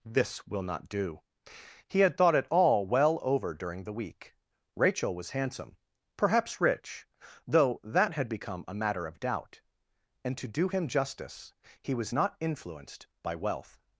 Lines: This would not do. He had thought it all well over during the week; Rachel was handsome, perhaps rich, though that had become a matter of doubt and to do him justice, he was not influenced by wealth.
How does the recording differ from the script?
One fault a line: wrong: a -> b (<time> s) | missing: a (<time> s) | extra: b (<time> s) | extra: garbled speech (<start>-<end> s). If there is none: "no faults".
wrong: would -> will (0.5 s)